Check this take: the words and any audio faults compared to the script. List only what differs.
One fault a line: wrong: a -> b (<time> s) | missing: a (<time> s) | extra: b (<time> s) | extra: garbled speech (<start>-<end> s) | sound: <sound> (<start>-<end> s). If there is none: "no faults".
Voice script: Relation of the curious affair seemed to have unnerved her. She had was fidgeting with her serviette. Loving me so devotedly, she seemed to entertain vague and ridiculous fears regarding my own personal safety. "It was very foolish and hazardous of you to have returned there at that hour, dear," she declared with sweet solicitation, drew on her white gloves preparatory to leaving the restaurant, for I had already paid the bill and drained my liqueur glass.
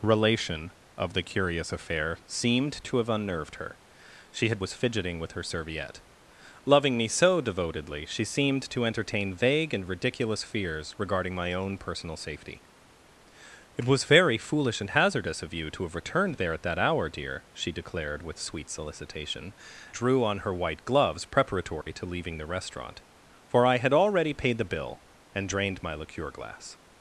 sound: dropout (21.8-21.9 s)